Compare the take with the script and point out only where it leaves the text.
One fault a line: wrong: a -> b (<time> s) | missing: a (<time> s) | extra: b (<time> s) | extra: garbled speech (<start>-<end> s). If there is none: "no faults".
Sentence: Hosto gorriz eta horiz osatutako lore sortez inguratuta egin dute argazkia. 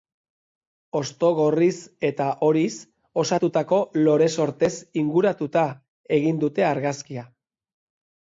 no faults